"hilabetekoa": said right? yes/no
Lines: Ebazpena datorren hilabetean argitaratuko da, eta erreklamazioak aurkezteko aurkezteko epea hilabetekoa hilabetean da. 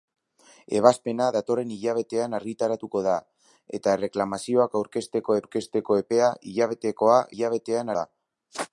yes